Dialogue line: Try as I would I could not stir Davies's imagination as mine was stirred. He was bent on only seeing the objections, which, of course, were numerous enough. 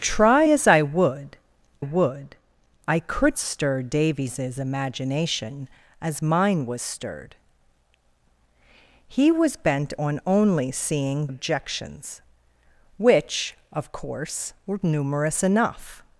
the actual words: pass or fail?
fail